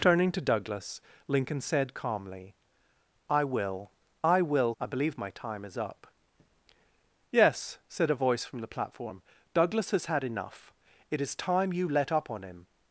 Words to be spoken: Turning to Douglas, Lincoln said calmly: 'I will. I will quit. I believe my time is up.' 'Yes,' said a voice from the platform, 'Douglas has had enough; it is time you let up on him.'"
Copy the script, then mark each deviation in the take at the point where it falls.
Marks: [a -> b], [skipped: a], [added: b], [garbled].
Turning to Douglas, Lincoln said calmly: 'I will. I will [skipped: quit.] I believe my time is up.' 'Yes,' said a voice from the platform, 'Douglas has had enough; it is time you let up on him.'"